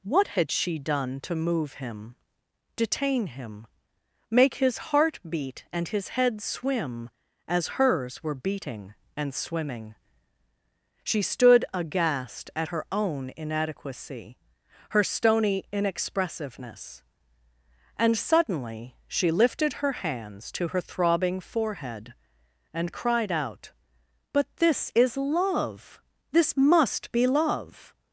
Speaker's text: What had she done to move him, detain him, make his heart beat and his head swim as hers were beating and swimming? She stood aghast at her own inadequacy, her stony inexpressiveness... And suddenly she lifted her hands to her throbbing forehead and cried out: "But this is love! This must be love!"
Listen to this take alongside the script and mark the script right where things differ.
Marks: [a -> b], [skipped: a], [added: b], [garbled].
What had she done to move him, detain him, make his heart beat and his head swim as hers were beating and swimming? She stood aghast at her own inadequacy, her stony inexpressiveness... And suddenly she lifted her hands to her throbbing forehead and cried out: "But this is love! This must be love!"